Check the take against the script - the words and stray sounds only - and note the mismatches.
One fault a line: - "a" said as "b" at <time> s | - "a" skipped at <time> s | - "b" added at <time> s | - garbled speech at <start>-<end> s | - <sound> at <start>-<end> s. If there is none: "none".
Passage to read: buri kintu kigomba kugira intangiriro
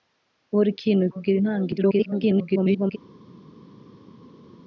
- "kigomba" skipped at 1.0 s
- garbled speech at 1.8-3.0 s